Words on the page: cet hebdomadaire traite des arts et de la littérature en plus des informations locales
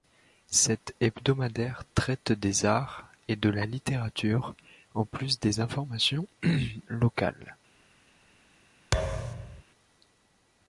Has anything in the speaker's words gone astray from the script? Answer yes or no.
no